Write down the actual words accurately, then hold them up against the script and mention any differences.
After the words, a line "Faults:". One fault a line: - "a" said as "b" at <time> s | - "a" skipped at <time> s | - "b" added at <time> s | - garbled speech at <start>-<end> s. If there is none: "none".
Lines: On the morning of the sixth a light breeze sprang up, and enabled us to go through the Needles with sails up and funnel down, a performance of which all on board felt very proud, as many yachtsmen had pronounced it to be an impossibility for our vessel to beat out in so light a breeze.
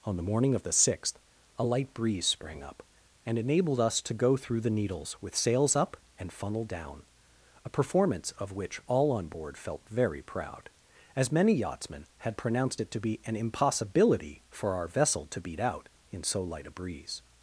On the morning of the sixth a light breeze sprang up, and enabled us to go through the Needles with sails up and funnel down, a performance of which all on board felt very proud, as many yachtsmen had pronounced it to be an impossibility for our vessel to beat out in so light a breeze.
Faults:
none